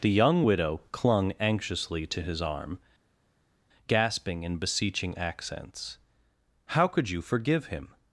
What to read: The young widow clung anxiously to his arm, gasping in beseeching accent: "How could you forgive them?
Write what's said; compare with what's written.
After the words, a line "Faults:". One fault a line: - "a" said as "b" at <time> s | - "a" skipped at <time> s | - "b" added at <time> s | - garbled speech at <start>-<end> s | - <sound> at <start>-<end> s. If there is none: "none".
The young widow clung anxiously to his arm, gasping in beseeching accents: "How could you forgive him?
Faults:
- "accent" said as "accents" at 5.2 s
- "them" said as "him" at 7.7 s